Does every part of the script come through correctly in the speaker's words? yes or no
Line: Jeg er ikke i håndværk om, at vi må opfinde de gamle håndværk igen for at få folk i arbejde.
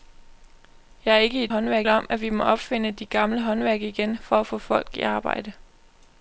yes